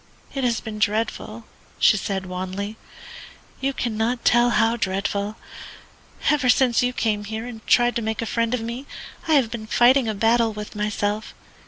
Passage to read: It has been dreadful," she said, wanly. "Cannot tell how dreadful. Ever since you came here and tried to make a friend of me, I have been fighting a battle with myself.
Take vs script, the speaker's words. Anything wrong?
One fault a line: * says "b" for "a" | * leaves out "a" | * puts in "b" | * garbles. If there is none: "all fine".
* puts in "You"